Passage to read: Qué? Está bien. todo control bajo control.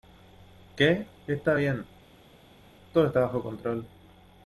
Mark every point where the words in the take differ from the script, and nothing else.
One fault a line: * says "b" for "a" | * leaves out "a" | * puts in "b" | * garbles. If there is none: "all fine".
* says "está" for "control"